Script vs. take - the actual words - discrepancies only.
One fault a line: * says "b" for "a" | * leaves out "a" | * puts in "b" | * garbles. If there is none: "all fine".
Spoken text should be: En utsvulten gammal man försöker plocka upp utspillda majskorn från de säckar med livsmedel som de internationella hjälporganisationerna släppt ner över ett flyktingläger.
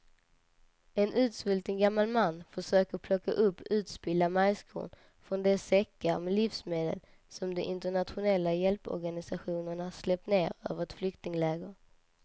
all fine